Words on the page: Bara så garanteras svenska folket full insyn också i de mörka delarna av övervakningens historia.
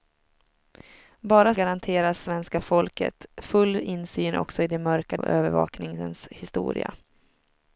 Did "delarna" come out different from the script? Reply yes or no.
yes